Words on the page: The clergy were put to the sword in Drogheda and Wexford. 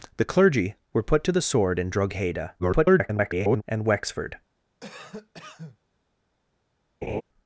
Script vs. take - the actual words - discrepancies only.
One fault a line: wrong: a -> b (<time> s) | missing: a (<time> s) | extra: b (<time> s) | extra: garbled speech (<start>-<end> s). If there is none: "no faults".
extra: garbled speech (2.6-3.6 s)